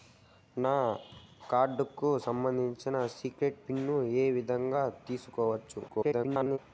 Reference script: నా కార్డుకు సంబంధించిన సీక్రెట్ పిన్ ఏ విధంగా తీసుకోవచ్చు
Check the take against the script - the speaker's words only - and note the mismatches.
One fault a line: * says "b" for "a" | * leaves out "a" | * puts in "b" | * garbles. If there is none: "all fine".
* garbles